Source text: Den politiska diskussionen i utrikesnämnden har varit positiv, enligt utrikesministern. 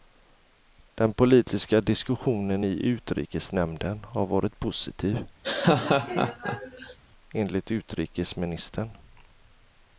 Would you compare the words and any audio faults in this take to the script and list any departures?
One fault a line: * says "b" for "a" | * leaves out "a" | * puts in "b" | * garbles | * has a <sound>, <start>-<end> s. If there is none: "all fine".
* has a laugh, 5.4-7.0 s